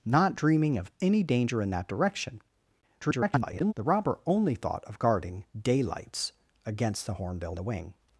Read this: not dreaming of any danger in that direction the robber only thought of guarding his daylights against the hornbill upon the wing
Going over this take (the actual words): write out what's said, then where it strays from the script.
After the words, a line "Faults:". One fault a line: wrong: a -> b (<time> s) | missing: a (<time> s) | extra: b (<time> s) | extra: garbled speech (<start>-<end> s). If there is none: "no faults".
not dreaming of any danger in that direction [garbled] the robber only thought of guarding daylights against the hornbill the wing
Faults:
extra: garbled speech (3.0-3.7 s)
missing: his (5.4 s)
missing: upon (7.6 s)